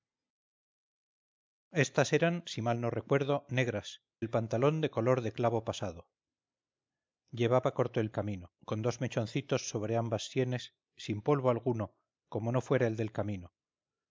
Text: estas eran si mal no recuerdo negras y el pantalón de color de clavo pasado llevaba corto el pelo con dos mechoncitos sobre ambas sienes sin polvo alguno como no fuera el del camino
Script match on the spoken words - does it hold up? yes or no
no